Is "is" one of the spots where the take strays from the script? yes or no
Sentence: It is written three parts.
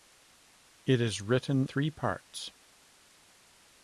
no